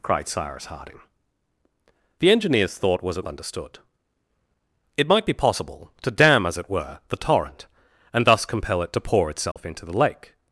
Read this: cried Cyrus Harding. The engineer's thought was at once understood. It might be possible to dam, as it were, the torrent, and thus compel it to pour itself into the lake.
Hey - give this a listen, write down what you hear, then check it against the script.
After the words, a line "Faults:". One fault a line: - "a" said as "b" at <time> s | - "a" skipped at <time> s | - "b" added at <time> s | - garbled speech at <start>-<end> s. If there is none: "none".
cried Cyrus Harding. The engineer's thought was at understood. It might be possible to dam, as it were, the torrent, and thus compel it to pour itself into the lake.
Faults:
- "once" skipped at 3.3 s